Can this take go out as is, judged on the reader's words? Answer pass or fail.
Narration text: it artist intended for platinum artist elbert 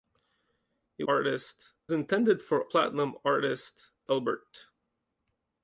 pass